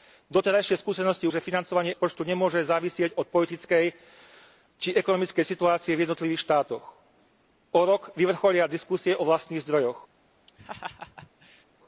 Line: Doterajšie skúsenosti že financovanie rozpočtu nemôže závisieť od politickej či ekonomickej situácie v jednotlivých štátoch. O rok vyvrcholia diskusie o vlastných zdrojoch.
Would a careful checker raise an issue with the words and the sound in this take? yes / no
yes